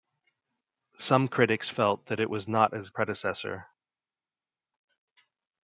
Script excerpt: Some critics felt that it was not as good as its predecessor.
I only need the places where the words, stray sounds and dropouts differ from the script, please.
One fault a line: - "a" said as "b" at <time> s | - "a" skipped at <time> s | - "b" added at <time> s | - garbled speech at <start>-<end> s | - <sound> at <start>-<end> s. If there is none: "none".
- "good as its" skipped at 2.9 s